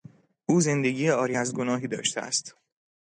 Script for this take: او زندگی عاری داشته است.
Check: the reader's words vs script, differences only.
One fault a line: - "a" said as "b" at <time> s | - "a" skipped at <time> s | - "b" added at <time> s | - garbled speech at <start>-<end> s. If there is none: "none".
- "از گناهی" added at 1.3 s